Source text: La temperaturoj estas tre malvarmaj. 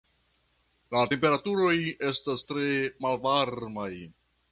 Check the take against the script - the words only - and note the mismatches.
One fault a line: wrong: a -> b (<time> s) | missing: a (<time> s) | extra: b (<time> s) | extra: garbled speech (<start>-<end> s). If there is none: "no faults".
no faults